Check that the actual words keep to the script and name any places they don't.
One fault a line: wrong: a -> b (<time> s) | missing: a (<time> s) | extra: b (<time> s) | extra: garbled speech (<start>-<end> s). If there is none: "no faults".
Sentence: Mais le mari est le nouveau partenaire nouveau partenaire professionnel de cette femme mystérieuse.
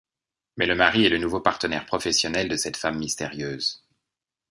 missing: nouveau partenaire (1.9 s)